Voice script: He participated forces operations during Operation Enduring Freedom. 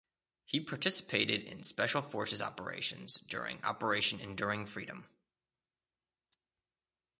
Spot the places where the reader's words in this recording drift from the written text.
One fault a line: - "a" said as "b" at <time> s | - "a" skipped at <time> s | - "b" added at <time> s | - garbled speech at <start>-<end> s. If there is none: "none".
- "in special" added at 1.4 s